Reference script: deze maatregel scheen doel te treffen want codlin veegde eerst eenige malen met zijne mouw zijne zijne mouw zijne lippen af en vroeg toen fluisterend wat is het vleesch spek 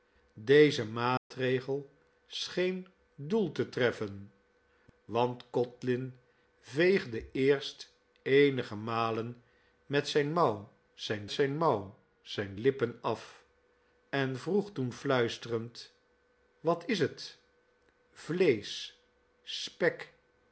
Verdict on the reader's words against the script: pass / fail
pass